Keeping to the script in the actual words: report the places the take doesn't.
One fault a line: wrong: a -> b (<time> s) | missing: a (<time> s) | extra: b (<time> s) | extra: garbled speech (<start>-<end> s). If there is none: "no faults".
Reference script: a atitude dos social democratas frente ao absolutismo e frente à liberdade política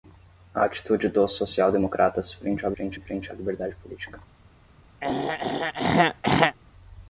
wrong: absolutismo -> frente (2.7 s)